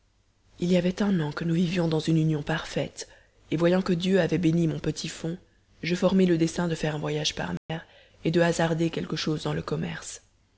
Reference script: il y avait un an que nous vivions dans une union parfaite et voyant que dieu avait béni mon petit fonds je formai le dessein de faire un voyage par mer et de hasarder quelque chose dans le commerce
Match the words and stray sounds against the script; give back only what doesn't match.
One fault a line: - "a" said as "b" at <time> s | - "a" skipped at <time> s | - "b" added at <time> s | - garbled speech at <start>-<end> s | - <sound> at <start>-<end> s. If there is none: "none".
- dropout at 7.6-7.7 s